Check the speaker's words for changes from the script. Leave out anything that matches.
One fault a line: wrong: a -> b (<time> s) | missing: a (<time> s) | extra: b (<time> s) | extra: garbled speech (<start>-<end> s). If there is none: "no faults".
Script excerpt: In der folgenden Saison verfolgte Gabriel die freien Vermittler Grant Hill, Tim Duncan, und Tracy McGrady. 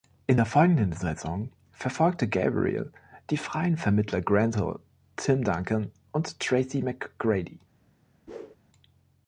no faults